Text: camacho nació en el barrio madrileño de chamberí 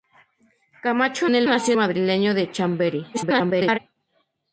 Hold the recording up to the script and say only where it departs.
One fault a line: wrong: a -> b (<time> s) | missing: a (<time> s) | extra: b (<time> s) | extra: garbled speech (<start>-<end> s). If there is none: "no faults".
missing: nació (1.3 s)
wrong: barrio -> nació (1.5 s)
extra: garbled speech (3.1-3.8 s)